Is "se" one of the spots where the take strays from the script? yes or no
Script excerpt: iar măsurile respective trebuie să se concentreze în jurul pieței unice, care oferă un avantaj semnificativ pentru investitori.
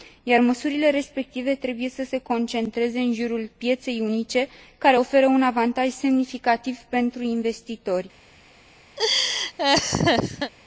no